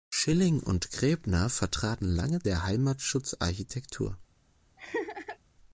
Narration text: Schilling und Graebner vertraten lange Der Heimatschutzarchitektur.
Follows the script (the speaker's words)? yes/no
yes